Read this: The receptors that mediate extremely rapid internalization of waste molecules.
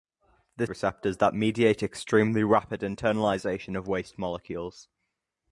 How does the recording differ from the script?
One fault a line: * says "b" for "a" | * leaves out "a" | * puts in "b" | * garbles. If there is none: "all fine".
all fine